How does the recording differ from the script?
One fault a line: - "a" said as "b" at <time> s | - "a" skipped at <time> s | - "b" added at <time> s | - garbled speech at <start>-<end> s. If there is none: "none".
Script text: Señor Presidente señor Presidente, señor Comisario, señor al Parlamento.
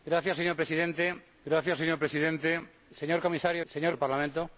none